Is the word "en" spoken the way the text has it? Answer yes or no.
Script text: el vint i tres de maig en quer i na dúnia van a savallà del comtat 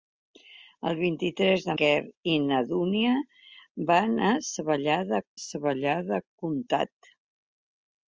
no